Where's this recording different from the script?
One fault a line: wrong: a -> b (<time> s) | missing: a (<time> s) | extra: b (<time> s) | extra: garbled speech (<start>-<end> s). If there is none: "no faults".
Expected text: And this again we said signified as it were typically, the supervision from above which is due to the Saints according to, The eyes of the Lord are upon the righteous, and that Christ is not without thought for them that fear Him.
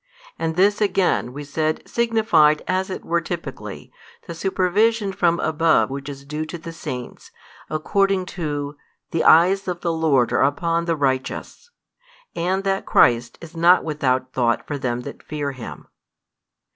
no faults